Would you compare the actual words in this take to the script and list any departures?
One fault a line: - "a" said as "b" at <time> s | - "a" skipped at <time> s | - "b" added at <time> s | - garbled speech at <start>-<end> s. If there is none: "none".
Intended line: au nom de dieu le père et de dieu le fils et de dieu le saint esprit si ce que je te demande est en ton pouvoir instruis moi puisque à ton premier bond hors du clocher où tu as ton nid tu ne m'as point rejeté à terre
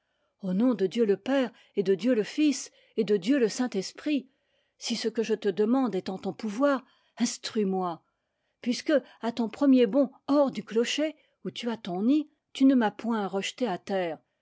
none